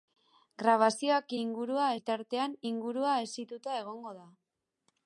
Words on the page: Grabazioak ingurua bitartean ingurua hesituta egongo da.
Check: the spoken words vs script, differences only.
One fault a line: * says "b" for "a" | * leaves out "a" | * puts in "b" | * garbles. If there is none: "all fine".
all fine